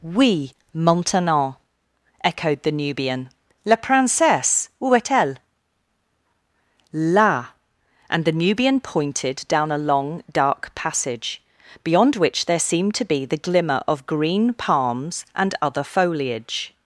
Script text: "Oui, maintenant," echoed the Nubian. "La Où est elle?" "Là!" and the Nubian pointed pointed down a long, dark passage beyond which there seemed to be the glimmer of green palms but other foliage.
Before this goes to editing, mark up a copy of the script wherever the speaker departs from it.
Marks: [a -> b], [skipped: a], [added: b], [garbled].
"Oui, maintenant," echoed the Nubian. "La [added: Princesse] Où est elle?" "Là!" and the Nubian pointed [skipped: pointed] down a long, dark passage beyond which there seemed to be the glimmer of green palms [but -> and] other foliage.